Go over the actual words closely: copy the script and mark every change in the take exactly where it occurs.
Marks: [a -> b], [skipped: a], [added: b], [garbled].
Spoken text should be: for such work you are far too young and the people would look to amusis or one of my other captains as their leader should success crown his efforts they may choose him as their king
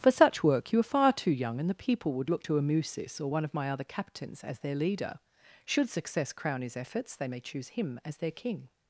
for such work you are far too young and the people would look to amusis or one of my other captains as their leader should success crown his efforts they may choose him as their king